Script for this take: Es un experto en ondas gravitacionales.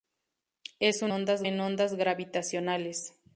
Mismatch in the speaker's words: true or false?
true